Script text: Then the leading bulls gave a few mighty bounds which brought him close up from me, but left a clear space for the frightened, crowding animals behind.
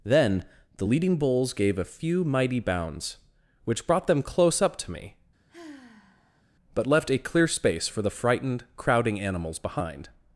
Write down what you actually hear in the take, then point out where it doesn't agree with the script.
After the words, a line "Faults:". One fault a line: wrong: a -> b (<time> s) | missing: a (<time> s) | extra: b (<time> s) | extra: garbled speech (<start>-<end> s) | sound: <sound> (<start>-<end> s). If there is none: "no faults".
Then the leading bulls gave a few mighty bounds which brought them close up to me, but left a clear space for the frightened, crowding animals behind.
Faults:
wrong: him -> them (4.1 s)
wrong: from -> to (4.8 s)
sound: sigh (5.5-6.4 s)